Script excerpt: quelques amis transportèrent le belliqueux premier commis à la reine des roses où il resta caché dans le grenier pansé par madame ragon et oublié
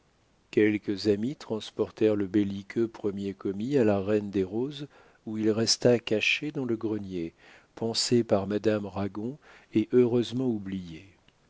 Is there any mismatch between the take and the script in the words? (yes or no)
yes